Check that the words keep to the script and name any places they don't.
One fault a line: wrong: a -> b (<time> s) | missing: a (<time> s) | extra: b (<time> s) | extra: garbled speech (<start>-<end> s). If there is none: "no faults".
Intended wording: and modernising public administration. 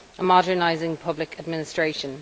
no faults